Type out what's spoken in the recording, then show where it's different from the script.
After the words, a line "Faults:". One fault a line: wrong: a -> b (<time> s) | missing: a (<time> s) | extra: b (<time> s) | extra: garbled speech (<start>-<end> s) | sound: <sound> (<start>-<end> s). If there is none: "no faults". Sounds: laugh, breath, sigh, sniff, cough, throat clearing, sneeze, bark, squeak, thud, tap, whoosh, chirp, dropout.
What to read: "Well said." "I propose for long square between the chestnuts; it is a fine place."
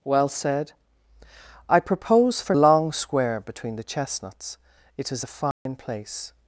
"Well said." "I propose for long square between the chestnuts; it is a fine place."
Faults:
sound: dropout (5.5-5.7 s)